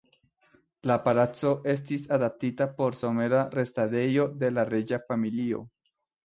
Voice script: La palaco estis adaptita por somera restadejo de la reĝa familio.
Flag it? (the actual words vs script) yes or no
no